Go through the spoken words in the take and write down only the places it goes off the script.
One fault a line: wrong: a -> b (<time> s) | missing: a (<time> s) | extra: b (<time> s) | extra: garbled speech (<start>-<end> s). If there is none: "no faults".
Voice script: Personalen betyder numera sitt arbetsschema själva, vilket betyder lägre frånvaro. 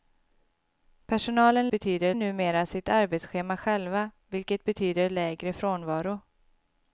no faults